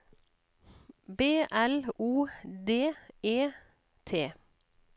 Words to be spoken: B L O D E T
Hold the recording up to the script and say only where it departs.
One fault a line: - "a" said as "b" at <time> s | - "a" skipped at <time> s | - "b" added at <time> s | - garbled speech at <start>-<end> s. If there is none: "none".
none